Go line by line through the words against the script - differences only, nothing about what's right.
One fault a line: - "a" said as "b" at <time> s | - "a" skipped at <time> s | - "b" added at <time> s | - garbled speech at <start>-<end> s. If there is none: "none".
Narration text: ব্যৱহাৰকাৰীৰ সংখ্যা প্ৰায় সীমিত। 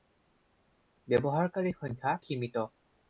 - "প্ৰায়" skipped at 2.1 s